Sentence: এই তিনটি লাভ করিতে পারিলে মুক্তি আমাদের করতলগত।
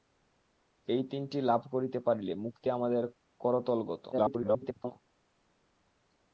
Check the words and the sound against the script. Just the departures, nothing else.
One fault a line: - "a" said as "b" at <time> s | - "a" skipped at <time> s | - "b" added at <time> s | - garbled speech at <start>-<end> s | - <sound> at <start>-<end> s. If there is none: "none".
- garbled speech at 4.1-4.9 s